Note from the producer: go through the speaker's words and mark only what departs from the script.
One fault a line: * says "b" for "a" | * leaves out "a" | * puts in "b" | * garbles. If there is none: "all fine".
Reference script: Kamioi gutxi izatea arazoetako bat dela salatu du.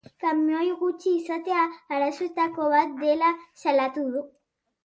all fine